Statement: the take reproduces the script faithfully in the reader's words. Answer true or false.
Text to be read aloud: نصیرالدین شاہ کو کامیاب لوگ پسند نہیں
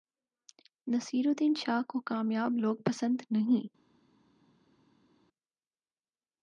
true